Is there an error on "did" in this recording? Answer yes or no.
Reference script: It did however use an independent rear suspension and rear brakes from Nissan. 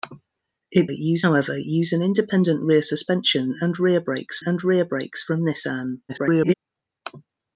yes